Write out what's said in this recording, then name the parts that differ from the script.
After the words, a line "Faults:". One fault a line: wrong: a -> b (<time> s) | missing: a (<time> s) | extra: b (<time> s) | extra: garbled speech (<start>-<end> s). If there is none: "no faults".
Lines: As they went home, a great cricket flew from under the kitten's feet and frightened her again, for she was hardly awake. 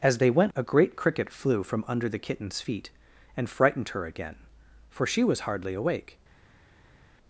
As they went a great cricket flew from under the kitten's feet and frightened her again, for she was hardly awake.
Faults:
missing: home (0.5 s)